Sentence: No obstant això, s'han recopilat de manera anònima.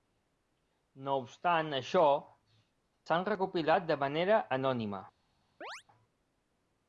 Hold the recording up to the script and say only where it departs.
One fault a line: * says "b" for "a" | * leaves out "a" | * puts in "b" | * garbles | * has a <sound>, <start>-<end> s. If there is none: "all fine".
* has a chirp, 5.6-5.8 s